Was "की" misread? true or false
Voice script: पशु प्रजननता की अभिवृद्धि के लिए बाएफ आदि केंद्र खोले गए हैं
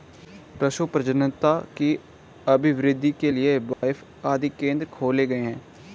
false